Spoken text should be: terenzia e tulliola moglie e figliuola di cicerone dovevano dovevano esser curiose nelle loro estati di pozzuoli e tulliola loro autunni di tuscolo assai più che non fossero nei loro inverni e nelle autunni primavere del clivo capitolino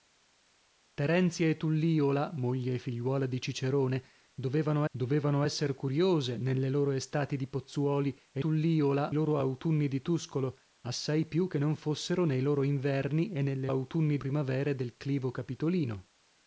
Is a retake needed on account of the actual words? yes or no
no